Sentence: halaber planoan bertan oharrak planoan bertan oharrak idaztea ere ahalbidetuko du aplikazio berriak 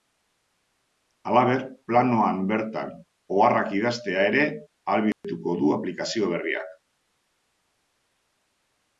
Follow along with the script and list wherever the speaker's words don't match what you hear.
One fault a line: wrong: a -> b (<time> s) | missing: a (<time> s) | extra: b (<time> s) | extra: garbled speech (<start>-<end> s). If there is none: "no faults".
missing: planoan bertan oharrak (3.8 s)